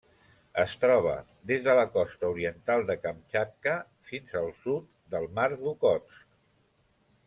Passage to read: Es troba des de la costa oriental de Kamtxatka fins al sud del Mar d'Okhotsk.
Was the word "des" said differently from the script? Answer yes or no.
no